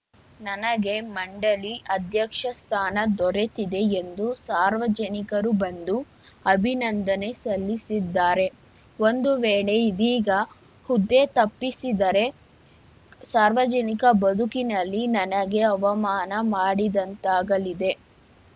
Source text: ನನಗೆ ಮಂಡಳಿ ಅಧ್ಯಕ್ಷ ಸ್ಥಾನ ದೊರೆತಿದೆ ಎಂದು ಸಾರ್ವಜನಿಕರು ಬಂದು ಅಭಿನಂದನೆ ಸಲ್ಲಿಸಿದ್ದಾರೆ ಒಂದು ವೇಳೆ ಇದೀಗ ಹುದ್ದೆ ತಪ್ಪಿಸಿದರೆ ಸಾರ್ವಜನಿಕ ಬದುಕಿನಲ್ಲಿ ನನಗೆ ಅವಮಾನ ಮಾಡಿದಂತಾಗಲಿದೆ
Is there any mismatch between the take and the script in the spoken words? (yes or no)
no